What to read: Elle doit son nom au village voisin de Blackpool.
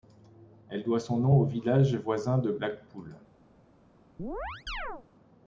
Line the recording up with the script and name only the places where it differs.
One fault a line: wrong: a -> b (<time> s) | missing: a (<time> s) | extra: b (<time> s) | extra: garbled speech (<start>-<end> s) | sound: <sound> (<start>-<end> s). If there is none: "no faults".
sound: chirp (4.2-5.1 s)